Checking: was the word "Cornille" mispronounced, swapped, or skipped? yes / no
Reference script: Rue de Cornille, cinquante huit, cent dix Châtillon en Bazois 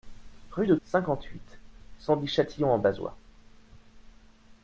yes